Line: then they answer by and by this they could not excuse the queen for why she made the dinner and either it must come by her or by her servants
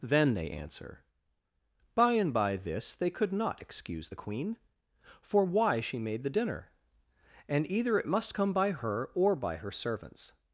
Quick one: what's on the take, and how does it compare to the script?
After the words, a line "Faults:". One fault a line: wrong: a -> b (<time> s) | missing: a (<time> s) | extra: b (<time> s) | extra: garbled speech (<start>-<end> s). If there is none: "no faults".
then they answer by and by this they could not excuse the queen for why she made the dinner and either it must come by her or by her servants
Faults:
no faults